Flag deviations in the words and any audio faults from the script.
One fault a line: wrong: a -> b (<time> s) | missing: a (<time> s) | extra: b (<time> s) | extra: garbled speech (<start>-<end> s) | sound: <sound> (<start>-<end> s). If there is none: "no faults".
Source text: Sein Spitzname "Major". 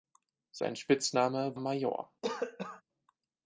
sound: cough (2.2-2.8 s)